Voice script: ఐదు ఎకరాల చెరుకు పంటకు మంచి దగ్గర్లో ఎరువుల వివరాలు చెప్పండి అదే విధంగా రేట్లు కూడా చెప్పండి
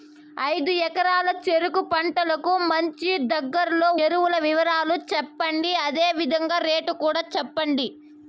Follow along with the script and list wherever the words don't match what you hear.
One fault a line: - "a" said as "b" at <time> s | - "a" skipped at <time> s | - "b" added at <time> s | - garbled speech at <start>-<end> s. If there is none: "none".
none